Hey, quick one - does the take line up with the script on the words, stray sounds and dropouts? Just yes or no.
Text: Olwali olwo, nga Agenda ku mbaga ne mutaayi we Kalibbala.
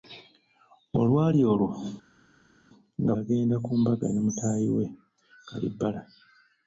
yes